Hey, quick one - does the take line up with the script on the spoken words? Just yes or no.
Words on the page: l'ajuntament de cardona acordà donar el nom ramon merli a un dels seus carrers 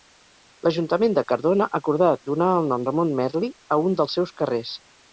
yes